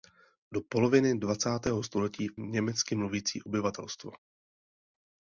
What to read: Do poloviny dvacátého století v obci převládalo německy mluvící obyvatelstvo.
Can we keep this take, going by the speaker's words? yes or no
no